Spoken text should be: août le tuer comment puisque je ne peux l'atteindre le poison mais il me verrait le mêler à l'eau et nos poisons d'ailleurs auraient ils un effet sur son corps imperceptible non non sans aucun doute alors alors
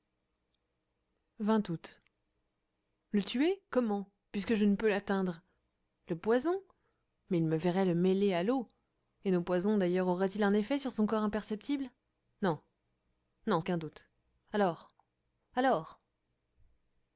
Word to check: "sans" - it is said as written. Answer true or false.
false